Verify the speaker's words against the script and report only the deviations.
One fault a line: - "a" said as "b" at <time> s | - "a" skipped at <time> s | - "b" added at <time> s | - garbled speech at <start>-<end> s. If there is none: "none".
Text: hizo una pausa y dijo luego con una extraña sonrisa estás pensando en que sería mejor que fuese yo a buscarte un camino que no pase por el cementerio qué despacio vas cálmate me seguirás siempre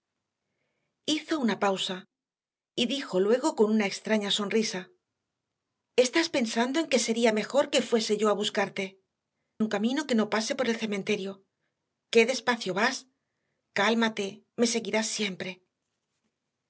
none